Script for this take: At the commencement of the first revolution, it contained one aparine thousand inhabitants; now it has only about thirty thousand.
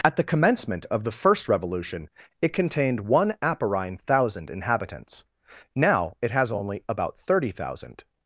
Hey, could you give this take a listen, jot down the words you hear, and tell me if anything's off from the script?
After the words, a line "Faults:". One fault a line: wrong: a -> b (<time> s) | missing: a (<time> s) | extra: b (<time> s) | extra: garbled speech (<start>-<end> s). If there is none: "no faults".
At the commencement of the first revolution, it contained one aparine thousand inhabitants; now it has only about thirty thousand.
Faults:
no faults